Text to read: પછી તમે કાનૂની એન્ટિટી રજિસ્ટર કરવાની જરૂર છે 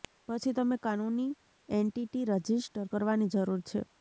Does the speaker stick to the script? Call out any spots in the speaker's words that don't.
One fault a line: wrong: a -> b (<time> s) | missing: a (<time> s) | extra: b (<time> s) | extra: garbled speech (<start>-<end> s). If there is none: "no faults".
no faults